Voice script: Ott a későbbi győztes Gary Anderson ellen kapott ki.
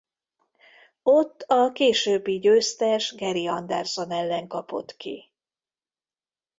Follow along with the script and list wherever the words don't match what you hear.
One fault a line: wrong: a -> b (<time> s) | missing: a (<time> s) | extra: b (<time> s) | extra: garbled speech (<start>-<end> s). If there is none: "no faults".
no faults